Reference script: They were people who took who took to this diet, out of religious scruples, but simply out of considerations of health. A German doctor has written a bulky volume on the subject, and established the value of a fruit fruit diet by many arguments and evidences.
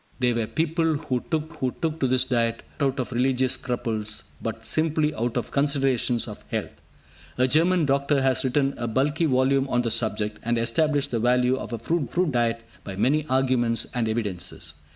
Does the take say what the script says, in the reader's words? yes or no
yes